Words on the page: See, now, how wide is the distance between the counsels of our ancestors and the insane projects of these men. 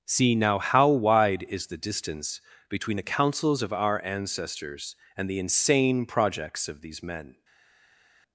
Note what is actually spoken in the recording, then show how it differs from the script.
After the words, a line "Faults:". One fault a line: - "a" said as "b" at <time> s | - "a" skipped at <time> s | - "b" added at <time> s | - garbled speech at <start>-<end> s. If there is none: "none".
See, now, how wide is the distance between the counsels of our ancestors and the insane projects of these men.
Faults:
none